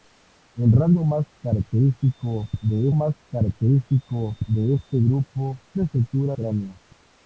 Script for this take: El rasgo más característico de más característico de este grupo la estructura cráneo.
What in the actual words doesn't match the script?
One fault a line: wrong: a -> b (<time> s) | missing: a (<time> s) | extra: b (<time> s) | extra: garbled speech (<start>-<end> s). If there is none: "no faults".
no faults